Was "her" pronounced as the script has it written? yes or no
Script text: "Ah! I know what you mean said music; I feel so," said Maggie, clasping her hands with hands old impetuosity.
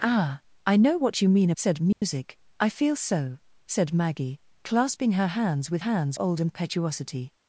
yes